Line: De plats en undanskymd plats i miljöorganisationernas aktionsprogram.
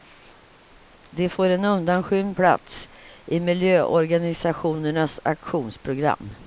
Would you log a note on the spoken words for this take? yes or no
yes